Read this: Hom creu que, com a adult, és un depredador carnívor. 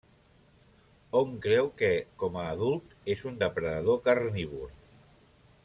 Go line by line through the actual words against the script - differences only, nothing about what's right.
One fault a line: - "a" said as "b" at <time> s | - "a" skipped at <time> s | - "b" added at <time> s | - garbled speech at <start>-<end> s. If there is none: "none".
none